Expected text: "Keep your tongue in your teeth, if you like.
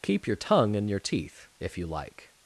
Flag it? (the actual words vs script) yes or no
no